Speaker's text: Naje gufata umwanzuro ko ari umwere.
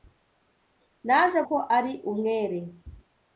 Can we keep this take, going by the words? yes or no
no